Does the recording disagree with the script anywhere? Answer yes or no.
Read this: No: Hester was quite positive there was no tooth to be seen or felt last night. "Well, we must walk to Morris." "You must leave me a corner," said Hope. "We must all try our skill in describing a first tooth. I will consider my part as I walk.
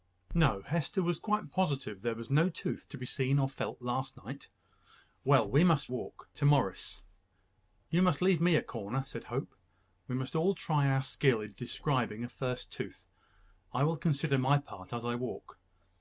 no